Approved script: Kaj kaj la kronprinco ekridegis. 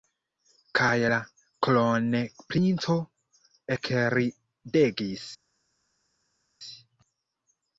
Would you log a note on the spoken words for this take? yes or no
yes